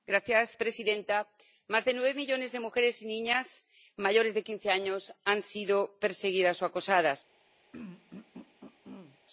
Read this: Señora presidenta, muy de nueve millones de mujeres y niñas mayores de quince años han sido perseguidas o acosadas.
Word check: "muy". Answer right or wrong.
wrong